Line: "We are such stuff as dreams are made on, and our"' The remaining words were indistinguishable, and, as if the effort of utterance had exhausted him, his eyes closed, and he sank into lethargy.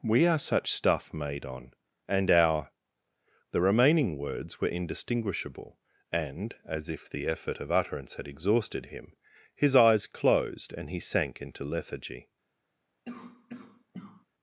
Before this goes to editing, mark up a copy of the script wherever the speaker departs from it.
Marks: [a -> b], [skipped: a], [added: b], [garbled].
"We are such stuff [skipped: as dreams are] made on, and our"' The remaining words were indistinguishable, and, as if the effort of utterance had exhausted him, his eyes closed, and he sank into lethargy.